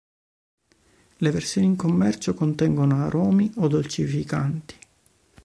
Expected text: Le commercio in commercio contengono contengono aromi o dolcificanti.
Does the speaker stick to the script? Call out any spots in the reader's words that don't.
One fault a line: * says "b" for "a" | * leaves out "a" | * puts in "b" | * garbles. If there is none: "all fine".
* says "versioni" for "commercio"
* leaves out "contengono"